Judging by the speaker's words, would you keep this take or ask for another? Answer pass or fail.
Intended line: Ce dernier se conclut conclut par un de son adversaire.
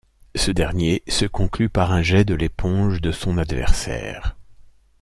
fail